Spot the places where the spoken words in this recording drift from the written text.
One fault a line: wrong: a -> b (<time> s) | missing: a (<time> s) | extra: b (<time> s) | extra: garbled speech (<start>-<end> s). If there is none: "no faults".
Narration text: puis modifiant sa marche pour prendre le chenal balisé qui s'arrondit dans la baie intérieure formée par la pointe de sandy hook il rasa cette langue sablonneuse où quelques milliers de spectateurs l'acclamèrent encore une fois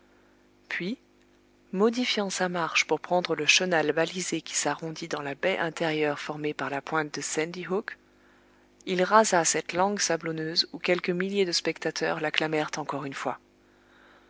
no faults